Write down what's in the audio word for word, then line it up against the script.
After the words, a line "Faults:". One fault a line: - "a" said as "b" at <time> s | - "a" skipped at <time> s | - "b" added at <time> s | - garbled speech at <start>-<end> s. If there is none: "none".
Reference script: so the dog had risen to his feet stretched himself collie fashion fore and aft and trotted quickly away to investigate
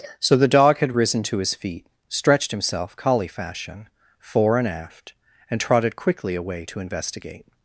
so the dog had risen to his feet stretched himself collie fashion fore and aft and trotted quickly away to investigate
Faults:
none